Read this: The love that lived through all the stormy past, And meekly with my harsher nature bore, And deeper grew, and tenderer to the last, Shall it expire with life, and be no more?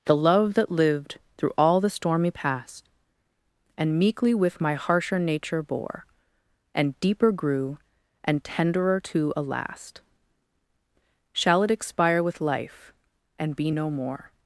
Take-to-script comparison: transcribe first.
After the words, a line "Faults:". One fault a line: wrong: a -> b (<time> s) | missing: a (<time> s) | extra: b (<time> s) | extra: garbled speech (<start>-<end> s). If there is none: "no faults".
The love that lived through all the stormy past, And meekly with my harsher nature bore, And deeper grew, and tenderer to a last, Shall it expire with life, and be no more?
Faults:
wrong: the -> a (9.4 s)